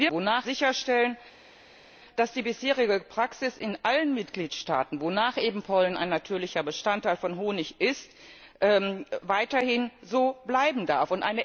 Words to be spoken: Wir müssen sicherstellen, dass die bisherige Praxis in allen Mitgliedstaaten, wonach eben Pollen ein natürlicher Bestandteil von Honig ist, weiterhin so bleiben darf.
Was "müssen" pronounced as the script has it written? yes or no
no